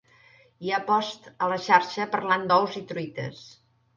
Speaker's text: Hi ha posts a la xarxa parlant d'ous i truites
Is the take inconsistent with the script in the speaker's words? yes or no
no